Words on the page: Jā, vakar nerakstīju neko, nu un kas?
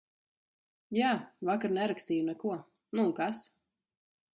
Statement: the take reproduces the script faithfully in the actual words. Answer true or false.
true